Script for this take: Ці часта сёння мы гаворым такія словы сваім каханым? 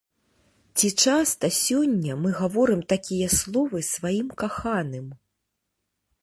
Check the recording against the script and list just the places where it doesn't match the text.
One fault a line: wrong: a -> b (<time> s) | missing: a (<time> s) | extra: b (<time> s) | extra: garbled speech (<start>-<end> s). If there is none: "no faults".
no faults